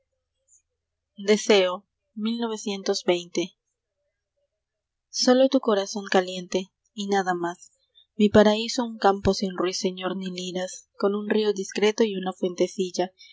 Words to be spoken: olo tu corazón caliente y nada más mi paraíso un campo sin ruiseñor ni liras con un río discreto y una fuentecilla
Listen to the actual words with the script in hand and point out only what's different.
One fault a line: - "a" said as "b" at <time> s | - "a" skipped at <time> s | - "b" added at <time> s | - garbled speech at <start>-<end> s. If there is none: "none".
none